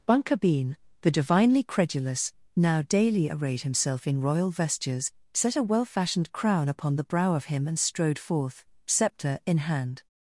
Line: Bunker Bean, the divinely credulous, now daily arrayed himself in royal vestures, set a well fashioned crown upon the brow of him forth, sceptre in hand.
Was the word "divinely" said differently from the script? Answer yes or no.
no